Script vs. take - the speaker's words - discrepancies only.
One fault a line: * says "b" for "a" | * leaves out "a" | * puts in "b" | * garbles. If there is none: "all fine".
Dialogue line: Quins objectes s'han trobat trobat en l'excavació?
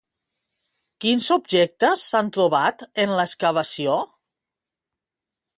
* leaves out "trobat"